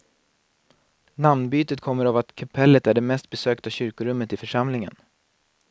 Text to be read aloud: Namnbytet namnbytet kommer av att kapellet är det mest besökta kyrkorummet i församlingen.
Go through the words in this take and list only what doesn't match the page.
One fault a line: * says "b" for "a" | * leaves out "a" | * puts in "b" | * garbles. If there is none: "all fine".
* leaves out "namnbytet"